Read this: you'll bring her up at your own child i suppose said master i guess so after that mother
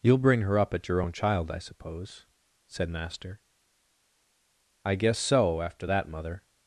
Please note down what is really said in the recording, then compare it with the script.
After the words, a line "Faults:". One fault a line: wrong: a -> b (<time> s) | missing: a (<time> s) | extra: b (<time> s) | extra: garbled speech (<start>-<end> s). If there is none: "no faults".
you'll bring her up at your own child i suppose said master i guess so after that mother
Faults:
no faults